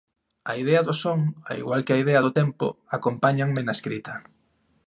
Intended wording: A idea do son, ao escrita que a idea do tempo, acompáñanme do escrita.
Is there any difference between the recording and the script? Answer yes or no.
yes